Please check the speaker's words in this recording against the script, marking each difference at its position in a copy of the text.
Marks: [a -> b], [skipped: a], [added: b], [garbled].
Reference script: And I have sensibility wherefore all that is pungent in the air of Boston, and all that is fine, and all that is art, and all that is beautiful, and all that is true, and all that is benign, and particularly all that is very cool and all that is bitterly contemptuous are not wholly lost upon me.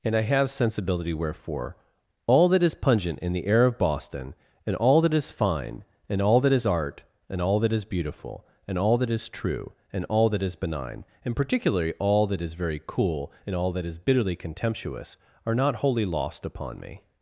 And I have sensibility wherefore all that is pungent in the air of Boston, and all that is fine, and all that is art, and all that is beautiful, and all that is true, and all that is benign, and particularly all that is very cool and all that is bitterly contemptuous are not wholly lost upon me.